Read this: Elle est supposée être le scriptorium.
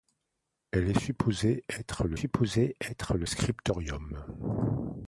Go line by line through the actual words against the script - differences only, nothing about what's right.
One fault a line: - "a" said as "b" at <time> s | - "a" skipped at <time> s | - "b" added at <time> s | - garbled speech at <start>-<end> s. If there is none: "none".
- "supposée être le" added at 2.1 s